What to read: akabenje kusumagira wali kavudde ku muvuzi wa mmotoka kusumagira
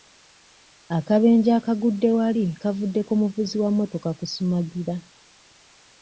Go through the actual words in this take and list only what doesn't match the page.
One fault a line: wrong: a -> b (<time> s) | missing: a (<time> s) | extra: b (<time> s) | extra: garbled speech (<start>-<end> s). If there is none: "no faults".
wrong: kusumagira -> akagudde (1.6 s)